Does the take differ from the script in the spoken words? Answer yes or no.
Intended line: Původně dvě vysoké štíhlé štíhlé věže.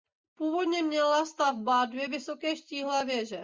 yes